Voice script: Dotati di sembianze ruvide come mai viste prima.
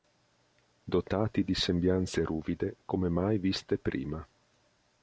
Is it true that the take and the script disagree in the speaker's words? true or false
false